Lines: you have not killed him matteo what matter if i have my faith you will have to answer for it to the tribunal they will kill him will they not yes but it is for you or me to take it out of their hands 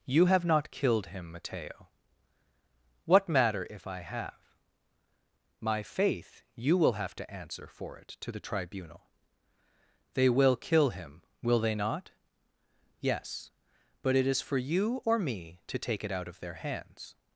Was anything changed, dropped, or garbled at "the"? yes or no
no